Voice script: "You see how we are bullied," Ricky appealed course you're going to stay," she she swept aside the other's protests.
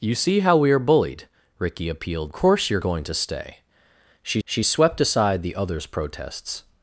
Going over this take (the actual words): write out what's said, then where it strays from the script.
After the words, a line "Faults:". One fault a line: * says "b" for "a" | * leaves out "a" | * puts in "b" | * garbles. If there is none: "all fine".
"You see how we are bullied," Ricky appealed course you're going to stay," she she swept aside the other's protests.
Faults:
all fine